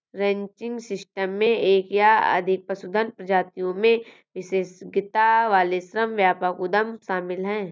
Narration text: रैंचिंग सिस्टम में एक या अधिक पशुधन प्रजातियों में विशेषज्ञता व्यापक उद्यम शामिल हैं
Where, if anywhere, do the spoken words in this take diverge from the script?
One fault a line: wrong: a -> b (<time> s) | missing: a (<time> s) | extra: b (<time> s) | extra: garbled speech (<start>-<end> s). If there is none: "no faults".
extra: वाले श्रम (5.5 s)